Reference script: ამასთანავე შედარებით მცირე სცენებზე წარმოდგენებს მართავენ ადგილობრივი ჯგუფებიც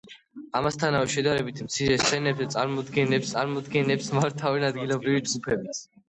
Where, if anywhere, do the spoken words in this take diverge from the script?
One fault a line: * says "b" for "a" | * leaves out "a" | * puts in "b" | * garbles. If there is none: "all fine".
* puts in "წარმოდგენებს"